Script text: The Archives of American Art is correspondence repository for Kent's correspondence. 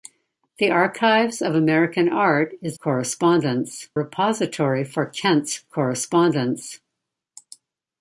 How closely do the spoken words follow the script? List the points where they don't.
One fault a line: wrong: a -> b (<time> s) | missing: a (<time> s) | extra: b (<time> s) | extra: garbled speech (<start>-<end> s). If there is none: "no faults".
no faults